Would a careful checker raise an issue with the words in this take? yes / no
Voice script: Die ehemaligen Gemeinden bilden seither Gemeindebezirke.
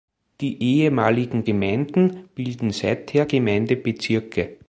no